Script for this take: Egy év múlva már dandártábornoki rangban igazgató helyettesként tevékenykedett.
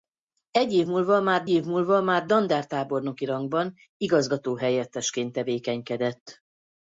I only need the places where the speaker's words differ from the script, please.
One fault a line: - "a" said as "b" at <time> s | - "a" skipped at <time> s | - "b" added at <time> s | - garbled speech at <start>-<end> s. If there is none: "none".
- "év múlva már" added at 1.5 s